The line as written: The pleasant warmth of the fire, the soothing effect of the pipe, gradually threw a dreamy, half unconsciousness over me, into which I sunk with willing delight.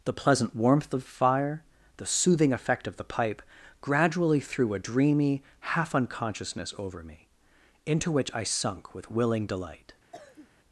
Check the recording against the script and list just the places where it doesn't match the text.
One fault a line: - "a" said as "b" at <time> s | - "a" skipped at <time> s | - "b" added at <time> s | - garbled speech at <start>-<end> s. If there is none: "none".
- "the" skipped at 1.0 s